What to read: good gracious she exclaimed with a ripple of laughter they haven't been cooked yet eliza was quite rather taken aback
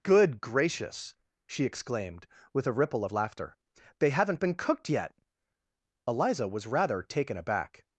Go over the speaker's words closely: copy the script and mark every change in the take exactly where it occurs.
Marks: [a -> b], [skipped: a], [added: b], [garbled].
good gracious she exclaimed with a ripple of laughter they haven't been cooked yet eliza was [skipped: quite] rather taken aback